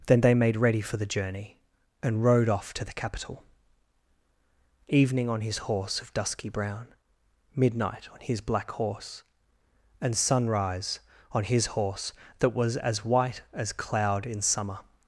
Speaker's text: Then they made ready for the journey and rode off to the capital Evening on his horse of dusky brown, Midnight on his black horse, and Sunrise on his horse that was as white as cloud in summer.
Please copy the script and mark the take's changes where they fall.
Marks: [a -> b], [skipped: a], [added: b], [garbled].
Then they made ready for the journey and rode off to the capital Evening on his horse of dusky brown, Midnight on his black horse, and Sunrise on his horse that was as white as cloud in summer.